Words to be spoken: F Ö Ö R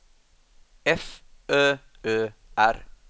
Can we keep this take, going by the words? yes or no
yes